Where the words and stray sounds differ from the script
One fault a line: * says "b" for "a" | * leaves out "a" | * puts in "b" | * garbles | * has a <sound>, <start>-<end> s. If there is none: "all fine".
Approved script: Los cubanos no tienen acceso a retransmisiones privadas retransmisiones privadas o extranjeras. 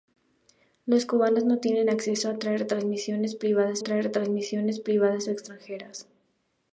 all fine